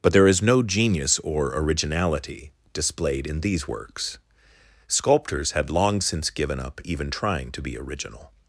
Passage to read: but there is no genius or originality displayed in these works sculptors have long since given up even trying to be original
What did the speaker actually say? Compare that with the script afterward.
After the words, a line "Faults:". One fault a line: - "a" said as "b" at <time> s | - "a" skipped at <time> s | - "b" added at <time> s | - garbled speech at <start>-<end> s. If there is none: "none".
but there is no genius or originality displayed in these works sculptors had long since given up even trying to be original
Faults:
- "have" said as "had" at 5.5 s